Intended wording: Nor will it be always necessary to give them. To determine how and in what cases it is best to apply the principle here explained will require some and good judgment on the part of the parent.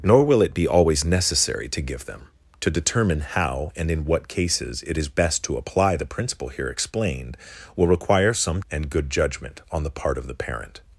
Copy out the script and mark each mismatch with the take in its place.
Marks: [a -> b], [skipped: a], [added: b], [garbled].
Nor will it be always necessary to give them. To determine how and in what cases it is best to apply the principle here explained will require some and good judgment on the part of the parent.